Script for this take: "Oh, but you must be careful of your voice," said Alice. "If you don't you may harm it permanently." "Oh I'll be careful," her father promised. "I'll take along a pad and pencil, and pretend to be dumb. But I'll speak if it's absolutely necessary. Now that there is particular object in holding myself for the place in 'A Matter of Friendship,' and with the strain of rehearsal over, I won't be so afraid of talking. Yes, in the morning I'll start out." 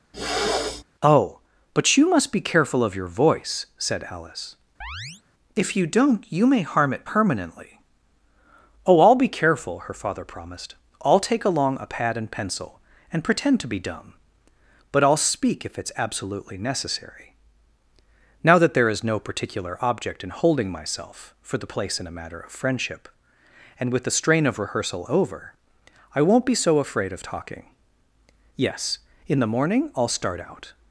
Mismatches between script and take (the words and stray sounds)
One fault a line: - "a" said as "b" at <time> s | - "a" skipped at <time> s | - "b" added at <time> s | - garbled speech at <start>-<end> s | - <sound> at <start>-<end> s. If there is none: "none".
- throat clearing at 0.1-0.8 s
- chirp at 4.8-5.2 s
- "no" added at 19.0 s